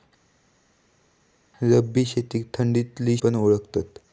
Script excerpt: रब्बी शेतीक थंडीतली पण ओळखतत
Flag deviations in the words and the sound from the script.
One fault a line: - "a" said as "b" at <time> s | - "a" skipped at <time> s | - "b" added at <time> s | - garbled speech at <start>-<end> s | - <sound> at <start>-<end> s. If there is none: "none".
none